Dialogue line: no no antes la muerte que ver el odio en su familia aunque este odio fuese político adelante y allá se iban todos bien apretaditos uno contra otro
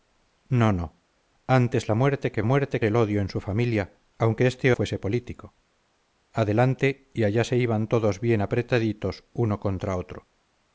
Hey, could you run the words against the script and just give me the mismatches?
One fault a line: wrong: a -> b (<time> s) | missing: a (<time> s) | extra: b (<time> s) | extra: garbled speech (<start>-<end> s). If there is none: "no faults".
wrong: ver -> muerte (2.4 s)
missing: odio (4.7 s)